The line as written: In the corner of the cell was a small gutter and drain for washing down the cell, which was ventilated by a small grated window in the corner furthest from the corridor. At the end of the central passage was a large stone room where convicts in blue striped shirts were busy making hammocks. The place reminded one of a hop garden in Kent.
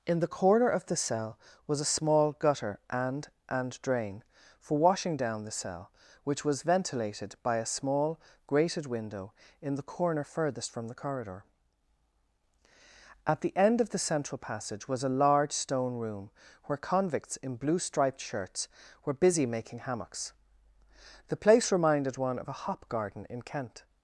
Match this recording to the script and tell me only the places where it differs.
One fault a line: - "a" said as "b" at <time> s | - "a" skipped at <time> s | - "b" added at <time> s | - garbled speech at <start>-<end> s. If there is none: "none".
- "and" added at 3.5 s